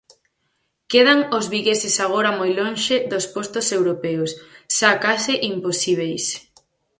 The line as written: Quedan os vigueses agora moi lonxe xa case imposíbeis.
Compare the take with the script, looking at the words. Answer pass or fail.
fail